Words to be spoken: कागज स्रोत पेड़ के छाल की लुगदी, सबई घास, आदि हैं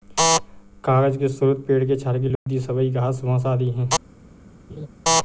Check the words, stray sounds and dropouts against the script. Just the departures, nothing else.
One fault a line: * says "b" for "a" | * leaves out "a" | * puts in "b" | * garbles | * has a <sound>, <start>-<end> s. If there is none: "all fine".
* puts in "के"
* has a dropout, 2.4-2.5 s
* puts in "बाँस"
* has a laugh, 4.7-4.9 s